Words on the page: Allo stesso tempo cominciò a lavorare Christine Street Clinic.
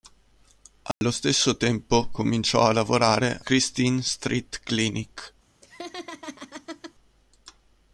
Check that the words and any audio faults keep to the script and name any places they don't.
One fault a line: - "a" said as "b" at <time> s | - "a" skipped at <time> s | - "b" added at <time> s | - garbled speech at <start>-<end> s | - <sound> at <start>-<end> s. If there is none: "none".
- dropout at 0.9-1.0 s
- laugh at 5.6-6.9 s